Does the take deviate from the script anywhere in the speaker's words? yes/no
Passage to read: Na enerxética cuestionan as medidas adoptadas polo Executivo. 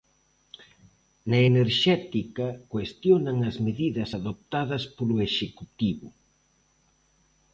no